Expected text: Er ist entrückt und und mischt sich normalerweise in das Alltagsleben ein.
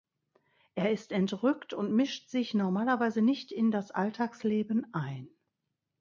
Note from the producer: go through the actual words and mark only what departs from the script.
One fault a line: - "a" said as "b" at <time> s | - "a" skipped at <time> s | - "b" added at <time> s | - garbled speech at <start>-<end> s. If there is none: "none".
- "und" skipped at 1.9 s
- "nicht" added at 3.2 s